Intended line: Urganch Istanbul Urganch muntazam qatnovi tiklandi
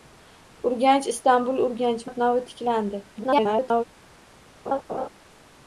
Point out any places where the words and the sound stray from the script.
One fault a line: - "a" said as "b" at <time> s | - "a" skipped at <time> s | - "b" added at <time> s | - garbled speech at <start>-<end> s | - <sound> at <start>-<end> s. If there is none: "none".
- "muntazam" skipped at 2.1 s
- garbled speech at 3.2-3.8 s
- laugh at 4.7-5.1 s